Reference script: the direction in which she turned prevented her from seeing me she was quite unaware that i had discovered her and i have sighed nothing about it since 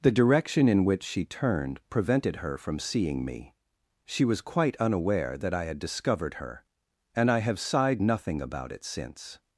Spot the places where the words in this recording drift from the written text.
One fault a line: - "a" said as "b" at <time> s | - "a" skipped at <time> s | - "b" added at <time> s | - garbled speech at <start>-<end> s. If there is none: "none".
none